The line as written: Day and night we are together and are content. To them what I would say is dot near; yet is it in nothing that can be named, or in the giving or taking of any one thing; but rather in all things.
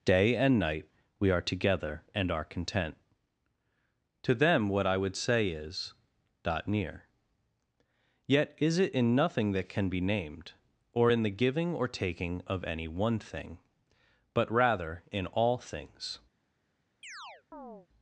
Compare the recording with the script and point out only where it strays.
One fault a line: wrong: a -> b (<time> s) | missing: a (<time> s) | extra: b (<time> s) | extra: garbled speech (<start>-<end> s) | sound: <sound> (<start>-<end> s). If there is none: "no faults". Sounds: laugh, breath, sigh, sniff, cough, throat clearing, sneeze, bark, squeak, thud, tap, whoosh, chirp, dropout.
sound: chirp (17.0-17.9 s)